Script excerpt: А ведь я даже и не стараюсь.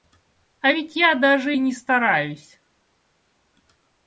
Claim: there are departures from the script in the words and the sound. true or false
false